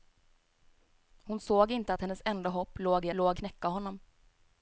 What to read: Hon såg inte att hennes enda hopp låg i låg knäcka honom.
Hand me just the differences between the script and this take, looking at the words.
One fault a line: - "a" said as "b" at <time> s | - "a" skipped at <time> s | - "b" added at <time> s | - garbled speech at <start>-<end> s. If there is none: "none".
none